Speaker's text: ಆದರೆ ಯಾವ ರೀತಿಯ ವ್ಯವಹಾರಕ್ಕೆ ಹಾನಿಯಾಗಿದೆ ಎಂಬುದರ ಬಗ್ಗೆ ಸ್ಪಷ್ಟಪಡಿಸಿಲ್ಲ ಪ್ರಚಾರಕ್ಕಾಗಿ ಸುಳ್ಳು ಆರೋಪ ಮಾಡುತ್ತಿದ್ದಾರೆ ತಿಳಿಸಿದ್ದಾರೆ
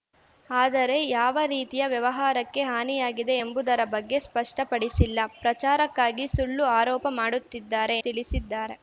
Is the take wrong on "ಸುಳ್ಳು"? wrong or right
right